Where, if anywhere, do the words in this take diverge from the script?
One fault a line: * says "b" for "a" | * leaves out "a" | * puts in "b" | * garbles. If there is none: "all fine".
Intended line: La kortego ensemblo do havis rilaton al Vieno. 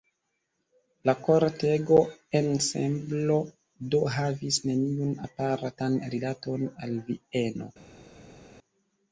* puts in "neniun apartan"